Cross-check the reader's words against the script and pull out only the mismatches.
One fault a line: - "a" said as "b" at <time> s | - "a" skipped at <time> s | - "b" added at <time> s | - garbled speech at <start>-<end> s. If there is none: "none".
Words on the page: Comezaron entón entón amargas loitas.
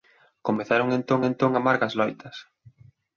none